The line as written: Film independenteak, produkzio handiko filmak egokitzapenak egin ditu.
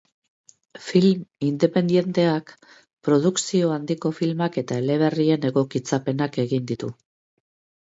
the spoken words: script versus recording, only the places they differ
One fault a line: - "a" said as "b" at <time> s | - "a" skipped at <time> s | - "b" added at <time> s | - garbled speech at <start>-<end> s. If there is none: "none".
- "eta eleberrien" added at 4.7 s